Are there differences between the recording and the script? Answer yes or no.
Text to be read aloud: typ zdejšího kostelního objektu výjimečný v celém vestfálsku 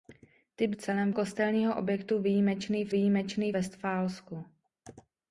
yes